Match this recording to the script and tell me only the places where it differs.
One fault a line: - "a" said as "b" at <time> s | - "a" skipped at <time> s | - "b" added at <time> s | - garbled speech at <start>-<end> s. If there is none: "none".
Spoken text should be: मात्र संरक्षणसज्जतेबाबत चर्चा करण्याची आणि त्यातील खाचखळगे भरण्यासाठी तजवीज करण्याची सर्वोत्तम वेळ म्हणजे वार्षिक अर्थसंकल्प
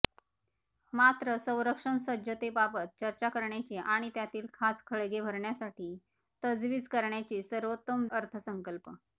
- "वेळ म्हणजे वार्षिक" skipped at 8.1 s